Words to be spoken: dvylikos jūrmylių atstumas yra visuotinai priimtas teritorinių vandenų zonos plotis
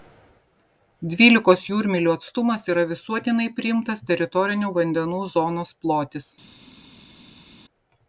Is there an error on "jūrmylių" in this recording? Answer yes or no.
no